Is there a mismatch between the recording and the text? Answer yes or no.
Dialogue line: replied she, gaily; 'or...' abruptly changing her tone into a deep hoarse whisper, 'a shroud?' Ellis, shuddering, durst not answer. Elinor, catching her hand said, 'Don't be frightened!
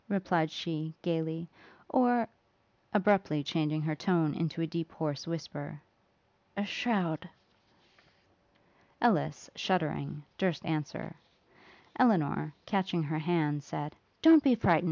yes